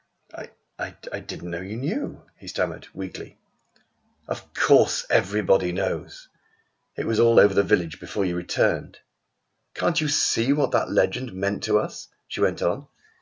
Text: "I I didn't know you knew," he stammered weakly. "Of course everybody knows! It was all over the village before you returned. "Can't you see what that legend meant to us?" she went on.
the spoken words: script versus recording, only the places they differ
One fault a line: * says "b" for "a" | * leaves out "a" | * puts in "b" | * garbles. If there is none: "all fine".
all fine